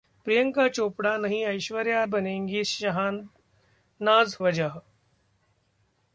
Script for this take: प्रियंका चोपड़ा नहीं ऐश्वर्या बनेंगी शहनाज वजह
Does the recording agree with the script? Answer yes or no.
yes